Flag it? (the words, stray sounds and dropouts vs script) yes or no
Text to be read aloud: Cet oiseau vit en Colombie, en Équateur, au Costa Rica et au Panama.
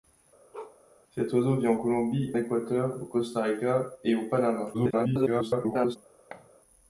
yes